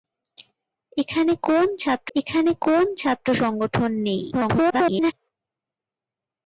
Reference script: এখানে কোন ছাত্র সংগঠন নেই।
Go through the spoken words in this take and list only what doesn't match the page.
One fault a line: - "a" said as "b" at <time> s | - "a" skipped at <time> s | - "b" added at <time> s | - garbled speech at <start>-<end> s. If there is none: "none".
- "এখানে কোন ছাত্র" added at 2.2 s
- garbled speech at 4.3-5.1 s